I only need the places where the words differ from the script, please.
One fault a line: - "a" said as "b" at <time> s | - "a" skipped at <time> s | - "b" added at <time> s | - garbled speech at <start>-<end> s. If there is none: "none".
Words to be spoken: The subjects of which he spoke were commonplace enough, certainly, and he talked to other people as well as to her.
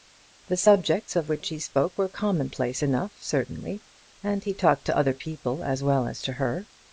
none